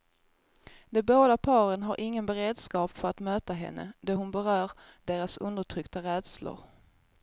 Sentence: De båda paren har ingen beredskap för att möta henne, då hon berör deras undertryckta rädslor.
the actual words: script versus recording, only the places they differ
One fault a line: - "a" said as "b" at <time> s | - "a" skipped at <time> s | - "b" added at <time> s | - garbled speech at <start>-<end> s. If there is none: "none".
none